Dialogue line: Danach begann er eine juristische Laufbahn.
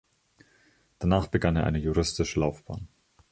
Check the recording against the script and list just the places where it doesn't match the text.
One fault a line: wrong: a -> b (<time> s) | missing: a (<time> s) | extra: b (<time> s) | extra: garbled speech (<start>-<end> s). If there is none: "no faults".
no faults